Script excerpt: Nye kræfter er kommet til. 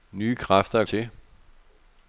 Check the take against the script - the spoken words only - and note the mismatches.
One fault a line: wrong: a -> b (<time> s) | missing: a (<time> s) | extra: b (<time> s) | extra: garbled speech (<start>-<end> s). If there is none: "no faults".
missing: kommet (0.8 s)